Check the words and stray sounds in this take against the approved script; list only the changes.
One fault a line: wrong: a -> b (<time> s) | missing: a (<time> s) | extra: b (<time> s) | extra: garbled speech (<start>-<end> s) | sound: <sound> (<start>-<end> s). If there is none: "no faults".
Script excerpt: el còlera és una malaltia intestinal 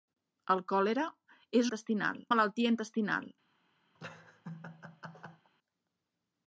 wrong: una -> intestinal (1.7 s)
sound: laugh (4.0-5.5 s)